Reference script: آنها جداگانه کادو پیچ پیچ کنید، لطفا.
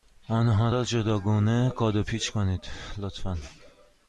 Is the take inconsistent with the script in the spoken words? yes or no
yes